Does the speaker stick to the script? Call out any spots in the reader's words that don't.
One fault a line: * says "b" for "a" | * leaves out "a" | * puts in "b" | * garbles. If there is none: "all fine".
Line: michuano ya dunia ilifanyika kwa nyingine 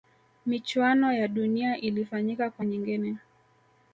all fine